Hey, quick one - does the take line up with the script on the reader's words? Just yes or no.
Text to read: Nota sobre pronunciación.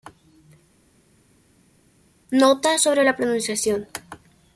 no